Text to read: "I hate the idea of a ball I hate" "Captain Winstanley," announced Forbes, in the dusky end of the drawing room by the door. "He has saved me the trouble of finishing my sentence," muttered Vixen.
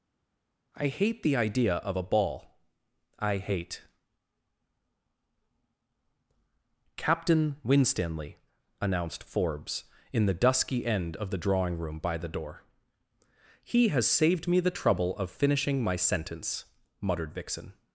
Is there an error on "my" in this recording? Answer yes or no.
no